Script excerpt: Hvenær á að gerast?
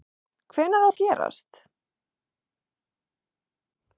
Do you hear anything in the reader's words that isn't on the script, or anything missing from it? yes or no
no